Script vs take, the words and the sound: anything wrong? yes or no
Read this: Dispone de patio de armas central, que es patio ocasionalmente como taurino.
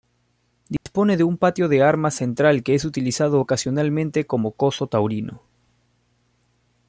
yes